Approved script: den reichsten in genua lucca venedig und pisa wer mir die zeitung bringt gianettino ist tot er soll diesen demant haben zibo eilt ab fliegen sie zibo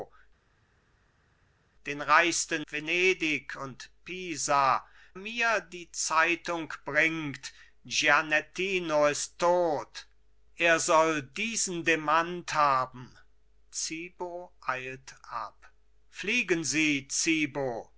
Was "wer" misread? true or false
true